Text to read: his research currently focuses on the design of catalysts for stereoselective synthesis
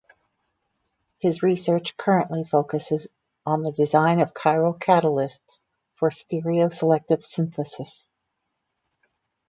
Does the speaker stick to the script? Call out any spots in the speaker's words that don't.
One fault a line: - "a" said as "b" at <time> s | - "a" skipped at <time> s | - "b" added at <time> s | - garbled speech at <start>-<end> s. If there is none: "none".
- "chiral" added at 4.3 s